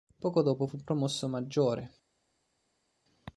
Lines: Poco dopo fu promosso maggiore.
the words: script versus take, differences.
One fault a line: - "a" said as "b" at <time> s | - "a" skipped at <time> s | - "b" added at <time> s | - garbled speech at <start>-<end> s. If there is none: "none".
none